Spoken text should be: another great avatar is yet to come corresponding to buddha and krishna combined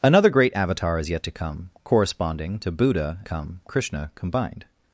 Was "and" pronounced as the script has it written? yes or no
no